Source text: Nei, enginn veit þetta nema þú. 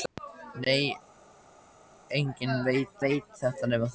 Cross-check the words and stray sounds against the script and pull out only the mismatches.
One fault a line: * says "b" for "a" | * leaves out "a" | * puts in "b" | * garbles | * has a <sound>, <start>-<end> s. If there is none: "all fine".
* puts in "veit"